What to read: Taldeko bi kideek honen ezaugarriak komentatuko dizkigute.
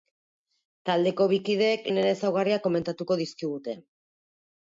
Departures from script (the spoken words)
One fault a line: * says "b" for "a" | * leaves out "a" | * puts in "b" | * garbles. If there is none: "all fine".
all fine